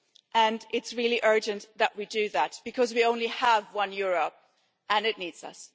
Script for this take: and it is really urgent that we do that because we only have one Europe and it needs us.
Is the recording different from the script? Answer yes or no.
no